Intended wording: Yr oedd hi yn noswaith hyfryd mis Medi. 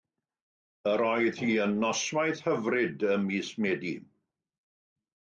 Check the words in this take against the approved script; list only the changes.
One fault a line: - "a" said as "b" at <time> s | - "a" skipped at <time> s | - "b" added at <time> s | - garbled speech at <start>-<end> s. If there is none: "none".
- "ym" added at 3.2 s